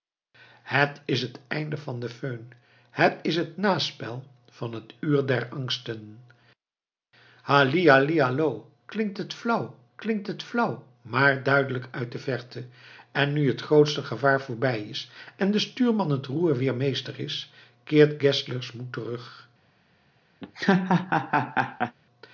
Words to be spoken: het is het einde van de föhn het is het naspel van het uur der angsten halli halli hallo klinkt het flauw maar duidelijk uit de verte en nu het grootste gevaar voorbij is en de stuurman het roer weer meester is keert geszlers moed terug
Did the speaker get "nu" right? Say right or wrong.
right